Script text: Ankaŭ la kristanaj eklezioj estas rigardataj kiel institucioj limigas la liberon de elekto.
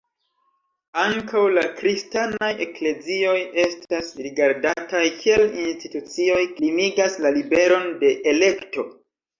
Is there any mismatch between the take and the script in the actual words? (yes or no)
no